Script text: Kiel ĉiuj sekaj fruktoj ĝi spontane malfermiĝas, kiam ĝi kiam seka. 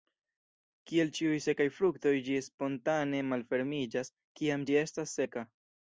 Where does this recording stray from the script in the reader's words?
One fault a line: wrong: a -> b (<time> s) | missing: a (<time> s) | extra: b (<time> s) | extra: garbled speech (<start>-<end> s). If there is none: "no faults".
wrong: kiam -> estas (4.9 s)